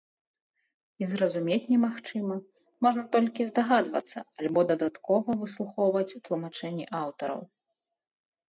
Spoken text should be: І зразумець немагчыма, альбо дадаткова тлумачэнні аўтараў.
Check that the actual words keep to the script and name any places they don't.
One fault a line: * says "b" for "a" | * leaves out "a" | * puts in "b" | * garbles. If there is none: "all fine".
* puts in "можна толькі здагадвацца"
* puts in "выслухоўваць"